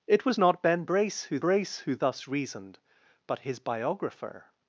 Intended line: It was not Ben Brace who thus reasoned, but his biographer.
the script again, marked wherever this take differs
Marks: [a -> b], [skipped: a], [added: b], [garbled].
It was not Ben Brace who [added: Brace who] thus reasoned, but his biographer.